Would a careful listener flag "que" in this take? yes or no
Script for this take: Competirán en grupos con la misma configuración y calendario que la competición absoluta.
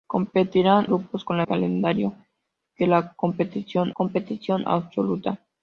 no